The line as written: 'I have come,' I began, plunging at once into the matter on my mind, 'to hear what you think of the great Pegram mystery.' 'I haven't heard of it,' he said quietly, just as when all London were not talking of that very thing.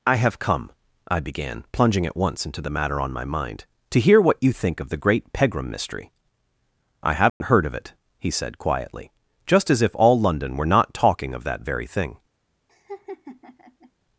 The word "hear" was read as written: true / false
true